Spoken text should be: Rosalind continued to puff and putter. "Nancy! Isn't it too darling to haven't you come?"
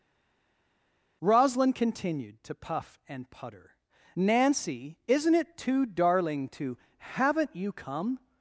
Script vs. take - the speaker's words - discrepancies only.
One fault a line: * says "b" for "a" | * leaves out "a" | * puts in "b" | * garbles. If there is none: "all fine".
all fine